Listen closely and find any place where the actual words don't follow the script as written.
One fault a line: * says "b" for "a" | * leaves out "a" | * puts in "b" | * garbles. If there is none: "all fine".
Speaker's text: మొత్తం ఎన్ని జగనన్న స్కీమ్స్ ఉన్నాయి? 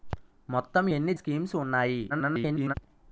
* leaves out "జగనన్న"
* garbles